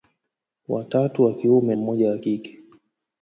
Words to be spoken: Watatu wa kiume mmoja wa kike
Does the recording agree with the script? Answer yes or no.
yes